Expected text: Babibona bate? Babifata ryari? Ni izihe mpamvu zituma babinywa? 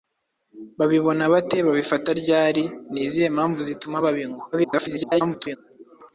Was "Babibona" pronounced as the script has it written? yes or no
yes